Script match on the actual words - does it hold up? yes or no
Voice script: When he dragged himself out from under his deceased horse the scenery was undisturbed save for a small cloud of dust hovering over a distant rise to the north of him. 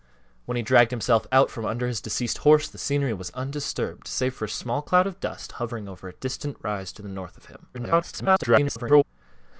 no